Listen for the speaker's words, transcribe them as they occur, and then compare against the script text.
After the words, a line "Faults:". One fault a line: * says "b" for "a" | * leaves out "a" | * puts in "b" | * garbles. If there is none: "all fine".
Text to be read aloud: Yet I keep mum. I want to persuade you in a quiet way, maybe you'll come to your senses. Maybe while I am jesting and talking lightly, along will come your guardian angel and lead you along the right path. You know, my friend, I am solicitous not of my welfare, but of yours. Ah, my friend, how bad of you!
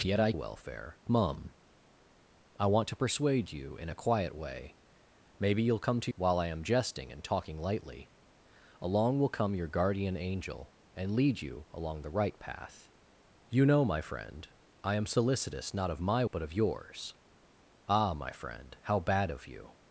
Yet I welfare mum. I want to persuade you in a quiet way, maybe you'll come to while I am jesting and talking lightly, along will come your guardian angel and lead you along the right path. You know, my friend, I am solicitous not of my but of yours. Ah, my friend, how bad of you!
Faults:
* says "welfare" for "keep"
* leaves out "your senses Maybe"
* leaves out "welfare"